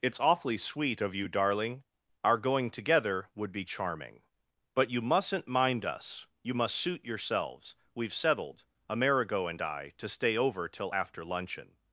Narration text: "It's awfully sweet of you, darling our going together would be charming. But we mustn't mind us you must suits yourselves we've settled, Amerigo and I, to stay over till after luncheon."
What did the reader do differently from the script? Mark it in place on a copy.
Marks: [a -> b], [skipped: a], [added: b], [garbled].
"It's awfully sweet of you, darling our going together would be charming. But [we -> you] mustn't mind us you must [suits -> suit] yourselves we've settled, Amerigo and I, to stay over till after luncheon."